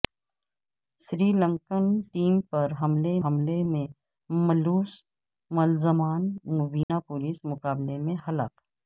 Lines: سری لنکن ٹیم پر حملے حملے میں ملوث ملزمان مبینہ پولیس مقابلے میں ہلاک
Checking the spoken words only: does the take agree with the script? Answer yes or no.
yes